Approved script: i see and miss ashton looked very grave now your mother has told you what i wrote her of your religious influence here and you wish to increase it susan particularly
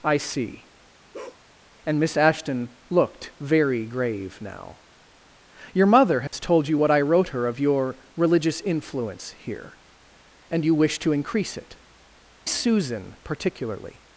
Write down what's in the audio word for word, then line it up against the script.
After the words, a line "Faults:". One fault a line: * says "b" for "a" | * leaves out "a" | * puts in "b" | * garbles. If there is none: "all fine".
i see and miss ashton looked very grave now your mother has told you what i wrote her of your religious influence here and you wish to increase it susan particularly
Faults:
all fine